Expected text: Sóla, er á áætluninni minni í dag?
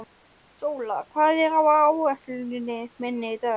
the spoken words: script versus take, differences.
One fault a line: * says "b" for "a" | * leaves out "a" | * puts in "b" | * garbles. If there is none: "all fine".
* puts in "hvað"